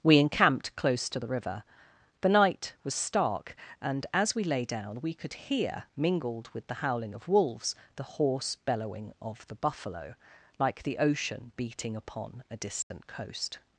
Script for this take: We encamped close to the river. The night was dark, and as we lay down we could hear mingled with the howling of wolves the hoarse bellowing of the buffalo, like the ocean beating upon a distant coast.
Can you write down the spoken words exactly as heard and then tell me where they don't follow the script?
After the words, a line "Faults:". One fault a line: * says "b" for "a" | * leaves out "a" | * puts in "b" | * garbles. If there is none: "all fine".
We encamped close to the river. The night was stark, and as we lay down we could hear mingled with the howling of wolves the hoarse bellowing of the buffalo, like the ocean beating upon a distant coast.
Faults:
* says "stark" for "dark"